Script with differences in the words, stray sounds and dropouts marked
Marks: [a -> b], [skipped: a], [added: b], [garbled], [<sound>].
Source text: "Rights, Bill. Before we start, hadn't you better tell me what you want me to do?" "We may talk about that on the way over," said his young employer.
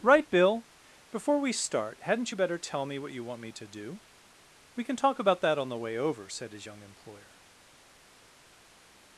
["Rights, -> Right] Bill. Before we start, hadn't you better tell me what you want me to do?" "We [may -> can] talk about that on the way over," said his young employer.